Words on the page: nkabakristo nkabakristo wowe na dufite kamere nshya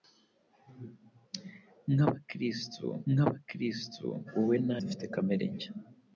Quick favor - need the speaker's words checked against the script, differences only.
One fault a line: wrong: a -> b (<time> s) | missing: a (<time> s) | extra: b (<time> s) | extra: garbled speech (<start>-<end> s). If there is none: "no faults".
no faults